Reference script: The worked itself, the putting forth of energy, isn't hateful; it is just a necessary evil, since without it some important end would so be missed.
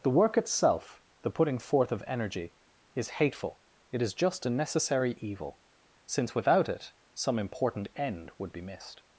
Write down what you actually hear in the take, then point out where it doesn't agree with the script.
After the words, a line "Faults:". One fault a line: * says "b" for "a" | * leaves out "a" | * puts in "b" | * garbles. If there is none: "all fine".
The work itself, the putting forth of energy, is hateful; it is just a necessary evil, since without it some important end would be missed.
Faults:
* says "work" for "worked"
* says "is" for "isn't"
* leaves out "so"